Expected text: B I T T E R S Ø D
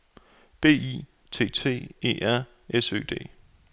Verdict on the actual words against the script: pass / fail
pass